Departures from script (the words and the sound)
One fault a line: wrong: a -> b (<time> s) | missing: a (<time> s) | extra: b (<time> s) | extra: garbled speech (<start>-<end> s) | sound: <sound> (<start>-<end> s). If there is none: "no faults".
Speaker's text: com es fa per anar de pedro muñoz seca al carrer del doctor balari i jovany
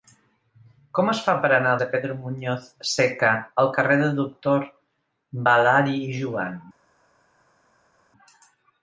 no faults